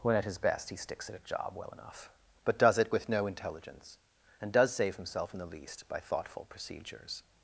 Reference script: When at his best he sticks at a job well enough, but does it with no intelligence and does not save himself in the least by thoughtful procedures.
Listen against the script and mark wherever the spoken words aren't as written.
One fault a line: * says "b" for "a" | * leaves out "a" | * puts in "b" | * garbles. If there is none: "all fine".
* leaves out "not"